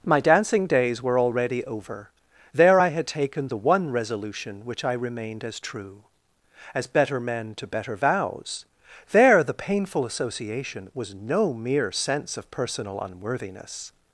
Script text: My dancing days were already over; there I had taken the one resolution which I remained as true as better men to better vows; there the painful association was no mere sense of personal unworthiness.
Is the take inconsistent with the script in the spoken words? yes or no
no